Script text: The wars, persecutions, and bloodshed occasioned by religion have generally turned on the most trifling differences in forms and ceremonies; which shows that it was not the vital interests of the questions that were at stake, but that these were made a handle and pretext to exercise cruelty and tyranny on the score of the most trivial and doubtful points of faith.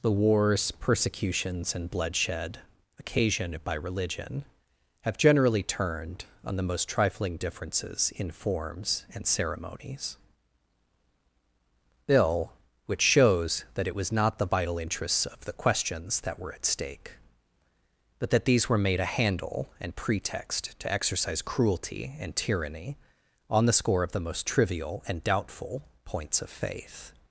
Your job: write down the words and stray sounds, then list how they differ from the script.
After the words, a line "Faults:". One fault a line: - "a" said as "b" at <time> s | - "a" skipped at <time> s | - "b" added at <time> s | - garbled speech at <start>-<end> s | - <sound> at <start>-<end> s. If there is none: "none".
The wars, persecutions, and bloodshed occasioned by religion have generally turned on the most trifling differences in forms and ceremonies; bill which shows that it was not the vital interests of the questions that were at stake, but that these were made a handle and pretext to exercise cruelty and tyranny on the score of the most trivial and doubtful points of faith.
Faults:
- "bill" added at 12.1 s